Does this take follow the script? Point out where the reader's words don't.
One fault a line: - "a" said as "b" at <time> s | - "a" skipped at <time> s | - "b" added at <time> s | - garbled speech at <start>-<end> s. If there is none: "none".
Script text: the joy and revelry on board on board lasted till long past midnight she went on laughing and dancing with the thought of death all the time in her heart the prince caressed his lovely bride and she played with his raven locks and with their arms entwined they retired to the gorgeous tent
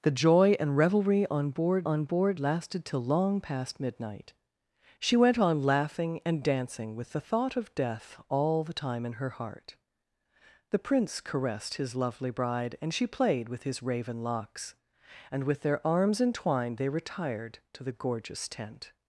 none